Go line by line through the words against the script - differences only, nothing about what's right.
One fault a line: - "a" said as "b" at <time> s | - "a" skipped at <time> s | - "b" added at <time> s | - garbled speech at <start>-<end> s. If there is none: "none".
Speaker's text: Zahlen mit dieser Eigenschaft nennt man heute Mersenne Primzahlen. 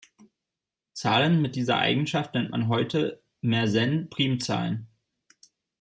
none